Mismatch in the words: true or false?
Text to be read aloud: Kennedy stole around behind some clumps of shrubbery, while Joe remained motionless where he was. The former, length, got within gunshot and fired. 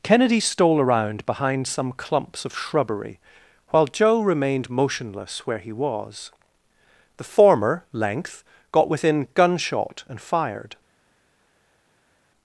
false